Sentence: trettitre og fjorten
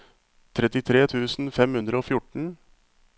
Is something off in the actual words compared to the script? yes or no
yes